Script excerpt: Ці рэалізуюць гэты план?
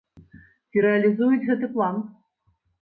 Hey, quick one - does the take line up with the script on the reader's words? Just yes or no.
yes